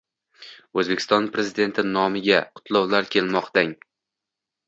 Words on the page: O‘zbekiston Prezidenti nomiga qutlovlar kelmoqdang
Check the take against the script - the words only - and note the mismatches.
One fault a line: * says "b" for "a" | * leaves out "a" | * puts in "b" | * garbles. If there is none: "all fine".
all fine